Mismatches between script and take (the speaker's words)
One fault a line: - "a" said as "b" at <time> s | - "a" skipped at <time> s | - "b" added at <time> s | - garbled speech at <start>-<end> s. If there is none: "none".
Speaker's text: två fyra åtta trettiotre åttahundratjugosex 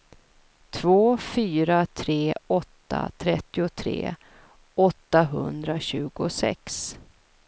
- "tre" added at 1.8 s